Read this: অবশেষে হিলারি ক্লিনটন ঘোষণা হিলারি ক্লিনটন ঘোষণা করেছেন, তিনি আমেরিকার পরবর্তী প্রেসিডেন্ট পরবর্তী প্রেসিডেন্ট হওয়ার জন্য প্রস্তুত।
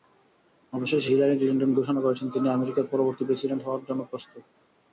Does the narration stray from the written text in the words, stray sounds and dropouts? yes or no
yes